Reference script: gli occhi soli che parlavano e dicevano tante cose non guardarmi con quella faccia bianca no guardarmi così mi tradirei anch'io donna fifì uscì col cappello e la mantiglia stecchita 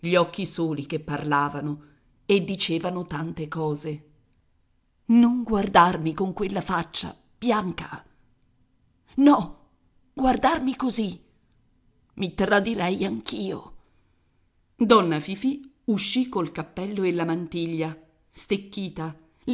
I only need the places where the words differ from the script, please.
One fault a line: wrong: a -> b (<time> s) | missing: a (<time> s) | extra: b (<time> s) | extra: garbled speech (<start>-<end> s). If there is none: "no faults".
no faults